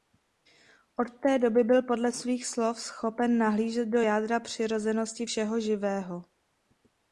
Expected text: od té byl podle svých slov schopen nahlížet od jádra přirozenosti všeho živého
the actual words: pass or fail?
fail